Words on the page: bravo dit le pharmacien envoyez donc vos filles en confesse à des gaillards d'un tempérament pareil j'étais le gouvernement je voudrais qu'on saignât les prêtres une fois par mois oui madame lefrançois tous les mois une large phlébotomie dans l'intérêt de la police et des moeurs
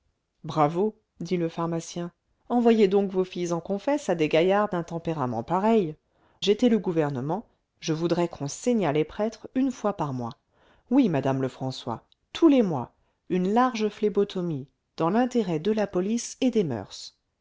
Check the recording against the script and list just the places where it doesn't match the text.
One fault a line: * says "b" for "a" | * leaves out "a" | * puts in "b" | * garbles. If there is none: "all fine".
all fine